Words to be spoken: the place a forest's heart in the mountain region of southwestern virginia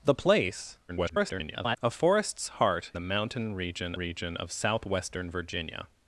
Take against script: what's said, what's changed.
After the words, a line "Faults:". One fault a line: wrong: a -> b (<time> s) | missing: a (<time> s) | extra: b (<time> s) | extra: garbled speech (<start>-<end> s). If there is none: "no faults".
the place [garbled] a forest's heart the mountain region region of southwestern virginia
Faults:
extra: garbled speech (0.9-1.8 s)
missing: in (2.9 s)
extra: region (3.9 s)